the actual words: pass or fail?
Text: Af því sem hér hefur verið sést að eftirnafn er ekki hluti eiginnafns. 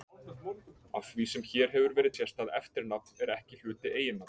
pass